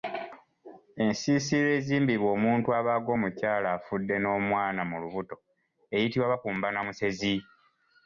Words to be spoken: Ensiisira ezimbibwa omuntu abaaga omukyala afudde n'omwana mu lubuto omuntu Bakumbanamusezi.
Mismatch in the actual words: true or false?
true